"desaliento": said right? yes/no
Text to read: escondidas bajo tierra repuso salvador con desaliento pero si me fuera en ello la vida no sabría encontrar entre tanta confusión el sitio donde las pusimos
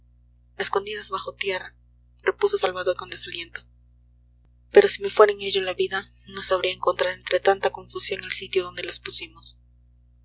yes